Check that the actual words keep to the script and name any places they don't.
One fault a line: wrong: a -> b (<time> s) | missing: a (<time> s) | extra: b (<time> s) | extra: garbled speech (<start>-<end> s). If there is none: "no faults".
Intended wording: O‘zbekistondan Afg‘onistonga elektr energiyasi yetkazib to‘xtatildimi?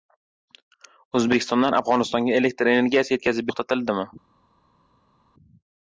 no faults